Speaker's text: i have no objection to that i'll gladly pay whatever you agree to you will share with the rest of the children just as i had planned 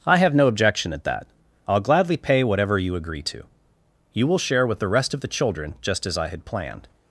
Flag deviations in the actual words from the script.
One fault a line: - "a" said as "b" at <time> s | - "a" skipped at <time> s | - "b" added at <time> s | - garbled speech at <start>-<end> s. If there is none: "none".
- "to" said as "at" at 0.9 s